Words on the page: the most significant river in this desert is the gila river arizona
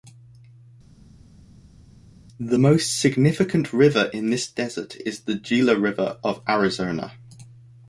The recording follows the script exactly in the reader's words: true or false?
false